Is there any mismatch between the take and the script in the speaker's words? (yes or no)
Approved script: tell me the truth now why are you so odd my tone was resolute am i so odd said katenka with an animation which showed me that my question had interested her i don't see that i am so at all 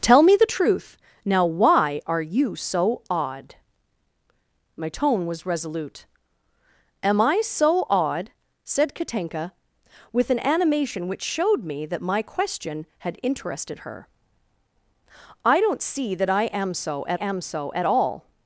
yes